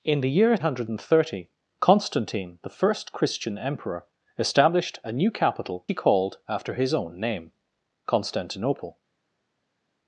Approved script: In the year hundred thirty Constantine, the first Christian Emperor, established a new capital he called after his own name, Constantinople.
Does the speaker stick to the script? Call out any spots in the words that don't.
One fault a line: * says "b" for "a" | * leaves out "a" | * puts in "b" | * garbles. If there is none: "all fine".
all fine